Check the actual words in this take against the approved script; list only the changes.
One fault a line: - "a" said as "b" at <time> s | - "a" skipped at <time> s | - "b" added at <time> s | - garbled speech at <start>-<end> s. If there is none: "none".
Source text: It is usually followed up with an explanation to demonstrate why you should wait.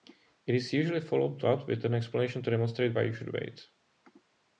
none